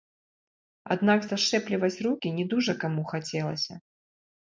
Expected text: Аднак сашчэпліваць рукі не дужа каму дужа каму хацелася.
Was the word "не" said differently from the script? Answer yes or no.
no